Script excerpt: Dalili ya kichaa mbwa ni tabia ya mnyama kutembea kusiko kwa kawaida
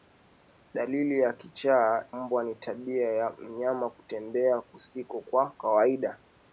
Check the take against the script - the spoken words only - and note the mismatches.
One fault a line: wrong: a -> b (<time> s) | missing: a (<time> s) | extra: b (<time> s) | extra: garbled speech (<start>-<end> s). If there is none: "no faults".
no faults